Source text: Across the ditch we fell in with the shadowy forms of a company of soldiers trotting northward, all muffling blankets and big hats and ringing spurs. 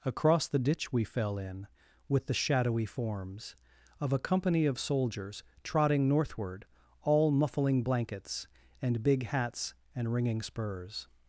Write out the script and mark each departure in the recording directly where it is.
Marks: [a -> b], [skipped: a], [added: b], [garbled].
Across the ditch we fell in with the shadowy forms of a company of soldiers trotting northward, all muffling blankets and big hats and ringing spurs.